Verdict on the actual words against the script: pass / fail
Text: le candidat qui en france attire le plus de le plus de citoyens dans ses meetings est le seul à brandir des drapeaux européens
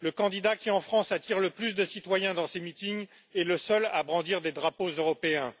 fail